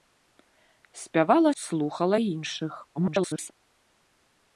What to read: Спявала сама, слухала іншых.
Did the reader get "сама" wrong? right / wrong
wrong